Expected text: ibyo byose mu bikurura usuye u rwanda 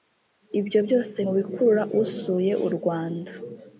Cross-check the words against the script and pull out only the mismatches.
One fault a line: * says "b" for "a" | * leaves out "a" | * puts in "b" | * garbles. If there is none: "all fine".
all fine